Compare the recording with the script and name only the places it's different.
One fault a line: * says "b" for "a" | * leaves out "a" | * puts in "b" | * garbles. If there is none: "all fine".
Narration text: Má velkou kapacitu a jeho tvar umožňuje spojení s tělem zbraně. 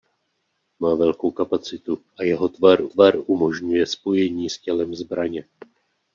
* puts in "tvar"